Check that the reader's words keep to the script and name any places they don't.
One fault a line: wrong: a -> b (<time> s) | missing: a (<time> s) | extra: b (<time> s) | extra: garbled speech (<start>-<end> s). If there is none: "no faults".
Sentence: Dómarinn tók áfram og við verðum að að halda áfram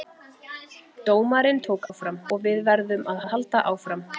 no faults